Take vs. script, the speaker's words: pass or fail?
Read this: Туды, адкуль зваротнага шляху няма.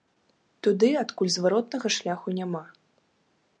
pass